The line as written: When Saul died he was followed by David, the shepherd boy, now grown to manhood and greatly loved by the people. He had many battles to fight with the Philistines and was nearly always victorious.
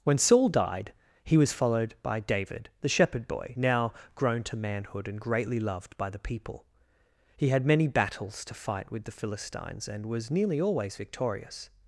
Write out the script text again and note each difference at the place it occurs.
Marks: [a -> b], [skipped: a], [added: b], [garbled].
When Saul died he was followed by David, the shepherd boy, now grown to manhood and greatly loved by the people. He had many battles to fight with the Philistines and was nearly always victorious.